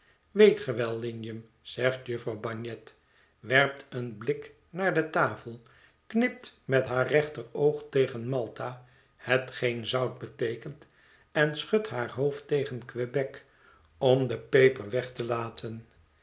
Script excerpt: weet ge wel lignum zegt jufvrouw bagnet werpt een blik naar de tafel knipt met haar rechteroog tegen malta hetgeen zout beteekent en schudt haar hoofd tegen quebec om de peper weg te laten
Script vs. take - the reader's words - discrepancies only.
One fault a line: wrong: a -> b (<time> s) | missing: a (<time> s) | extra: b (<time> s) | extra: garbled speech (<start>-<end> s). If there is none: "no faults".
no faults